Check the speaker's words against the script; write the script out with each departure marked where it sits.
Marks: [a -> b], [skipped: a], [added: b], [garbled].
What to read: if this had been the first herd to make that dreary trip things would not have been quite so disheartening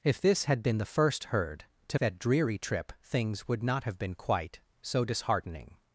if this had been the first herd to [skipped: make] that dreary trip things would not have been quite so disheartening